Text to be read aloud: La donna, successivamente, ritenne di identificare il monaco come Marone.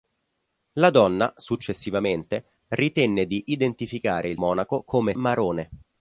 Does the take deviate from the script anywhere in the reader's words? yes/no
no